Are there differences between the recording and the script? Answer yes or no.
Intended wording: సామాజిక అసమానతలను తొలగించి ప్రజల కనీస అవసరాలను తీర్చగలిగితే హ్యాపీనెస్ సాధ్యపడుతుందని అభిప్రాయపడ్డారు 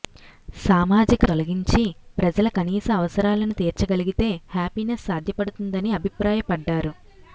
yes